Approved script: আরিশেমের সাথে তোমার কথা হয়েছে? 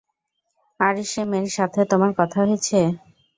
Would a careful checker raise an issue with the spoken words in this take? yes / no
no